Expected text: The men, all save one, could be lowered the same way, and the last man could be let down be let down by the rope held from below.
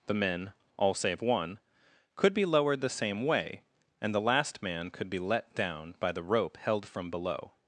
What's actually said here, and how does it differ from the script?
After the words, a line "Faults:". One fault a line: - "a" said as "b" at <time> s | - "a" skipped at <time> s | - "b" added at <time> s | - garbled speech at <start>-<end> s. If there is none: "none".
The men, all save one, could be lowered the same way, and the last man could be let down by the rope held from below.
Faults:
- "be let down" skipped at 6.0 s